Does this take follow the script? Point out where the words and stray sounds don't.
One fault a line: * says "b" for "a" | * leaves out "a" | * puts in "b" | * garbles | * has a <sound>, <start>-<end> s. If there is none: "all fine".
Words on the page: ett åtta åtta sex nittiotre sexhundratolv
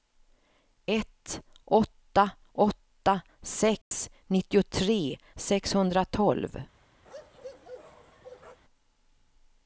* has a dropout, 3.8-3.9 s
* has a bark, 7.0-8.6 s